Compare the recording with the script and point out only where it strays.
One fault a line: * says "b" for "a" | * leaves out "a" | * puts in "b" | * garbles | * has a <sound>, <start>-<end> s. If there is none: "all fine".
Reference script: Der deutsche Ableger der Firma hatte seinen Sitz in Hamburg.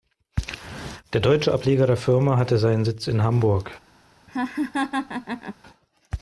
* has a laugh, 4.3-5.5 s